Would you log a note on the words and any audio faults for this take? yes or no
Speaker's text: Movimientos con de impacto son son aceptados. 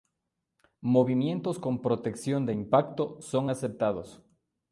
yes